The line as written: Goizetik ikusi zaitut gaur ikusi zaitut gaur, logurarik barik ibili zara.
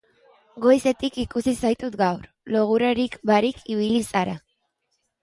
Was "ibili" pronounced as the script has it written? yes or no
yes